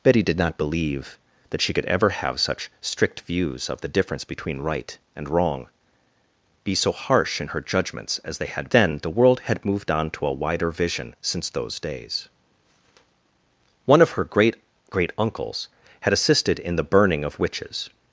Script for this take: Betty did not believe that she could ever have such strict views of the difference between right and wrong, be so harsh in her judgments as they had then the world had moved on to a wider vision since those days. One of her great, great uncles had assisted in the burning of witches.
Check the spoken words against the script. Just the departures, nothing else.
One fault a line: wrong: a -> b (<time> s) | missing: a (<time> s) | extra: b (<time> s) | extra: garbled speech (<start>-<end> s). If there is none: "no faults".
no faults